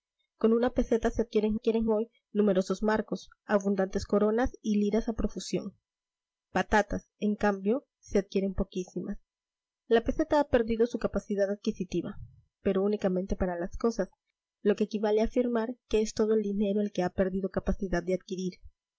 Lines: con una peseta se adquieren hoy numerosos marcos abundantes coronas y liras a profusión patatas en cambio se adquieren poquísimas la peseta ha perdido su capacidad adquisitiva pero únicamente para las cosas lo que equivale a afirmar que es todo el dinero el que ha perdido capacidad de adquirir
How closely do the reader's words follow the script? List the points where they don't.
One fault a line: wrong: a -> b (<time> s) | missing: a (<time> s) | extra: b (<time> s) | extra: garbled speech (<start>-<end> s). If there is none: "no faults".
extra: adquieren (1.5 s)